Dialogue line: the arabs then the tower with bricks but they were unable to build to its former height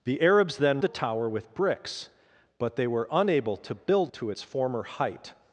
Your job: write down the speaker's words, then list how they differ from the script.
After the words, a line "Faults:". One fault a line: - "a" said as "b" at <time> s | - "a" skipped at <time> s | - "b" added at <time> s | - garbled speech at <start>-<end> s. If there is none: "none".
the arabs then the tower with bricks but they were unable to build to its former height
Faults:
none